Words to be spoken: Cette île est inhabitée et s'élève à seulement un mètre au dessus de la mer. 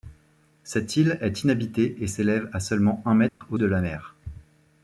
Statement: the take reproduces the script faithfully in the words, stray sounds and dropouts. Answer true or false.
false